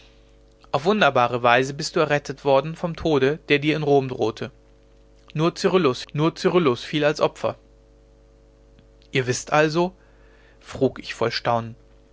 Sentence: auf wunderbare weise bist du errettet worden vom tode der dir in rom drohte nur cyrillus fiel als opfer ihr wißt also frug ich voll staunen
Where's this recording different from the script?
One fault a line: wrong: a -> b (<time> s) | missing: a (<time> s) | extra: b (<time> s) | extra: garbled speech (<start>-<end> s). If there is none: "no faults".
extra: nur cyrillus (6.1 s)